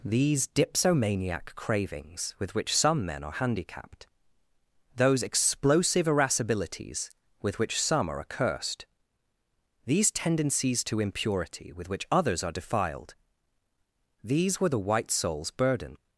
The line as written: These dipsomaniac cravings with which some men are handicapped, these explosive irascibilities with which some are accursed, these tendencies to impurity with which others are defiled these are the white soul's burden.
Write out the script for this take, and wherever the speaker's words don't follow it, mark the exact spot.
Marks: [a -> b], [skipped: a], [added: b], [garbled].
These dipsomaniac cravings with which some men are handicapped, [these -> those] explosive irascibilities with which some are accursed, these tendencies to impurity with which others are defiled these [are -> were] the white soul's burden.